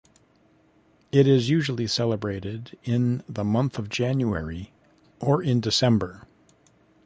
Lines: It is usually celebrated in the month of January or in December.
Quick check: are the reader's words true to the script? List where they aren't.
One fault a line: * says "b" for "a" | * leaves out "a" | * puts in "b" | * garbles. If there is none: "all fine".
all fine